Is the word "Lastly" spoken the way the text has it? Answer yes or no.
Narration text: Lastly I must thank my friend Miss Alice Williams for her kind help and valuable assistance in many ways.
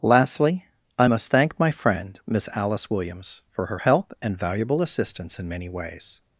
yes